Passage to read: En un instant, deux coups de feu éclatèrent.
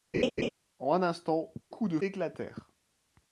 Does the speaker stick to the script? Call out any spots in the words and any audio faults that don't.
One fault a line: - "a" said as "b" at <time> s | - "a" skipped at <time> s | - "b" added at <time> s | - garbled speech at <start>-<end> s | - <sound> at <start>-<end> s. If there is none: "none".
- laugh at 0.1-0.5 s
- "deux" skipped at 1.5 s
- "feu" skipped at 2.0 s